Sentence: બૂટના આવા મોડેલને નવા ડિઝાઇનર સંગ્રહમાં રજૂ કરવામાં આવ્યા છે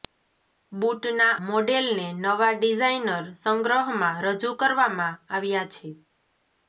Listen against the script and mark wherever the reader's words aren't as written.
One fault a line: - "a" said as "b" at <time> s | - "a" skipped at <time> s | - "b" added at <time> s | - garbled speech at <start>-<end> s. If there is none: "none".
- "આવા" skipped at 1.3 s